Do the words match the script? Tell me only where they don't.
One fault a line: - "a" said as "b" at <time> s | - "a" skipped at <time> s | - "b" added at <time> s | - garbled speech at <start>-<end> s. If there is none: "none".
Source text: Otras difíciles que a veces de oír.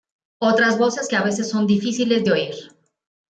- "difíciles" said as "voces" at 0.8 s
- "son difíciles" added at 1.5 s